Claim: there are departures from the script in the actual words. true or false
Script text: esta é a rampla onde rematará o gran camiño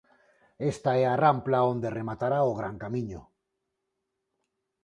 false